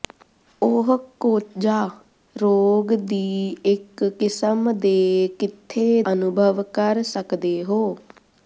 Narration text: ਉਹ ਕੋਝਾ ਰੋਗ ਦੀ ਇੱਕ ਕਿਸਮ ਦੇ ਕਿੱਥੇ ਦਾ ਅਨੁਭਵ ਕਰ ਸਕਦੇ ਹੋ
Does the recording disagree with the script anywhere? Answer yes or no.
yes